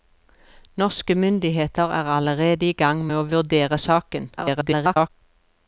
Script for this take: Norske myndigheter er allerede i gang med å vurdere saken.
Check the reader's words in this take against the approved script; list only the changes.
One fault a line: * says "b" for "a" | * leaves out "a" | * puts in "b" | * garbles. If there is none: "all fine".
* garbles